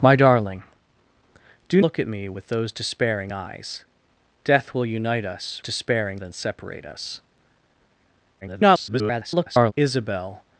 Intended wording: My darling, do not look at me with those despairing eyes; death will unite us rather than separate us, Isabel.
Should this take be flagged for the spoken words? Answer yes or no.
yes